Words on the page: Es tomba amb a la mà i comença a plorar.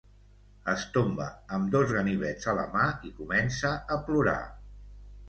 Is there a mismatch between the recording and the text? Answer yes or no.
yes